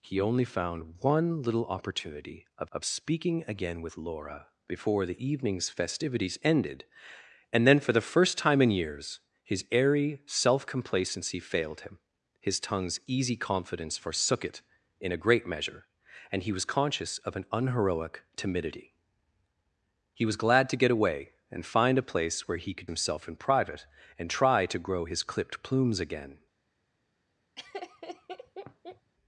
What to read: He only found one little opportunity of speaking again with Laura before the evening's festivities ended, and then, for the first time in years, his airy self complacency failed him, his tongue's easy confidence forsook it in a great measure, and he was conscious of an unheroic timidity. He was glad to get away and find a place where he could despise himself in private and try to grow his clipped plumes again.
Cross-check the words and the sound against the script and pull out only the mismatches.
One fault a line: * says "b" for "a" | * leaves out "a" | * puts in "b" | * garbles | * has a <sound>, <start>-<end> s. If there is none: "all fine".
* puts in "of"
* leaves out "despise"
* has a laugh, 27.6-29.1 s